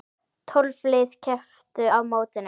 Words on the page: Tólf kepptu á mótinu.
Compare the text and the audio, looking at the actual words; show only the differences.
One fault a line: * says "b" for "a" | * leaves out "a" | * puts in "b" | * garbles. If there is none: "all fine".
* puts in "lið"